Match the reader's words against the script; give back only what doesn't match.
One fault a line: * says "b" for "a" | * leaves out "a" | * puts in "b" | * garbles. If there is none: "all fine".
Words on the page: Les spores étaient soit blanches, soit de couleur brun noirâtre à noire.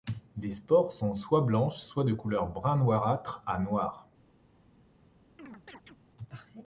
* says "sont" for "étaient"